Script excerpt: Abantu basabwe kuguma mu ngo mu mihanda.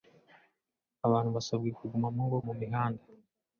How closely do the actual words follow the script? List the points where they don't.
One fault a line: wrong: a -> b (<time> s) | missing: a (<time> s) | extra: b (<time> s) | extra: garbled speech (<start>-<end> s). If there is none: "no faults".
no faults